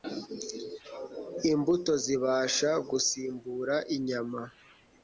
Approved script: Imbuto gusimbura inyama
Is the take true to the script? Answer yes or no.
no